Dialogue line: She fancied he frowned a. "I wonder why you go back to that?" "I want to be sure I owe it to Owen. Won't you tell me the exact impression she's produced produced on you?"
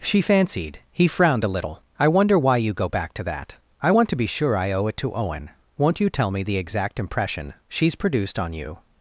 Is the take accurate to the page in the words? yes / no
no